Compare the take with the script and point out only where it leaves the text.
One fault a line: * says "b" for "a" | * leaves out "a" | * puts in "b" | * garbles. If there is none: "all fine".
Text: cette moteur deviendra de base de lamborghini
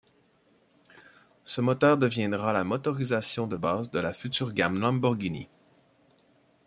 * says "ce" for "cette"
* puts in "la motorisation"
* puts in "la future gamme"